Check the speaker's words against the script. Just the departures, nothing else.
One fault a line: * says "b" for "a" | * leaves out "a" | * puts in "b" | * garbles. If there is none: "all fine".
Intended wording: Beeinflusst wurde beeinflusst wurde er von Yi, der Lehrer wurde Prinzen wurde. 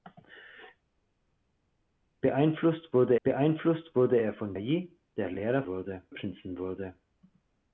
all fine